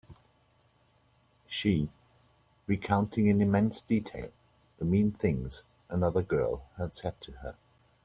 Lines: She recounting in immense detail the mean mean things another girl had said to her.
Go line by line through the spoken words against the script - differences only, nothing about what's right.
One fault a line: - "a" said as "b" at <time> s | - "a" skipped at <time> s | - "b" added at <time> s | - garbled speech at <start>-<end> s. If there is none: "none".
- "mean" skipped at 5.1 s